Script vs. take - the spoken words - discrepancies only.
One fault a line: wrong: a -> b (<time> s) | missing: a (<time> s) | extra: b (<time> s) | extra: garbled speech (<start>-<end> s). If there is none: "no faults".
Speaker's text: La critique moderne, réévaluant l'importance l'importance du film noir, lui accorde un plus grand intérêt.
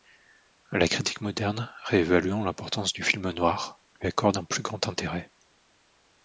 missing: l'importance (3.0 s)